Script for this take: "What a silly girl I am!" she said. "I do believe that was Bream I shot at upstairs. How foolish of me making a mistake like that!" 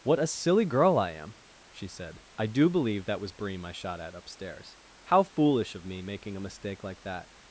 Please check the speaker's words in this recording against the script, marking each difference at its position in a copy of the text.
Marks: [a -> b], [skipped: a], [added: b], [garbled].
"What a silly girl I am!" she said. "I do believe that was Bream I shot at upstairs. How foolish of me making a mistake like that!"